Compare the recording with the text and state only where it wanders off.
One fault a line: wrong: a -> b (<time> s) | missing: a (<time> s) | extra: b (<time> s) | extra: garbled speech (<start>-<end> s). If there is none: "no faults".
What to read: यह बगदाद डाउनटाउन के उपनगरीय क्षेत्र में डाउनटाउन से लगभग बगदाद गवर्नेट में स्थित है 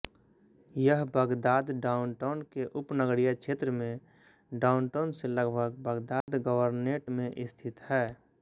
no faults